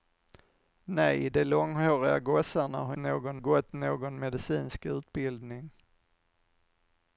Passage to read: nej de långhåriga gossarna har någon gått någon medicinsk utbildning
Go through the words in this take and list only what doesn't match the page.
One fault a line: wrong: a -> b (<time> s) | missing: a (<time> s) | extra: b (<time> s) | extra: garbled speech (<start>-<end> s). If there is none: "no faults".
no faults